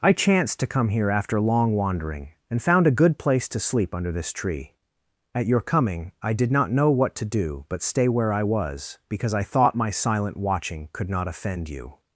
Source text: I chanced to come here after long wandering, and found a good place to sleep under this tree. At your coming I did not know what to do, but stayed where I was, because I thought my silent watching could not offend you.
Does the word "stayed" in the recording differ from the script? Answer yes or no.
yes